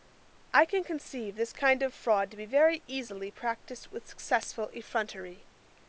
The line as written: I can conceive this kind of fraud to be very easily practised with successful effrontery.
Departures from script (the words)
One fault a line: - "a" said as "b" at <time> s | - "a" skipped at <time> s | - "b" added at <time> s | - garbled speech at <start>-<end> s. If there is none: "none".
none